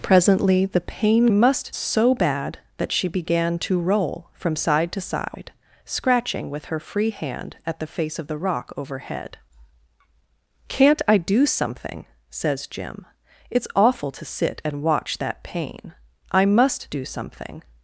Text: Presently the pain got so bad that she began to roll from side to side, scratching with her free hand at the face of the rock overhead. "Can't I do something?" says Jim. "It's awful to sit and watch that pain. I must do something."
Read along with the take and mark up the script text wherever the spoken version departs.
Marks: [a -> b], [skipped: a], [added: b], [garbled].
Presently the pain [got -> must] so bad that she began to roll from side to side, scratching with her free hand at the face of the rock overhead. "Can't I do something?" says Jim. "It's awful to sit and watch that pain. I must do something."